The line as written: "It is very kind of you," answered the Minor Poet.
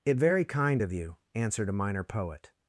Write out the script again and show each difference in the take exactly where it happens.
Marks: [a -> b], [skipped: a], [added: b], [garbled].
"It [skipped: is] very kind of you," answered [the -> a] Minor Poet.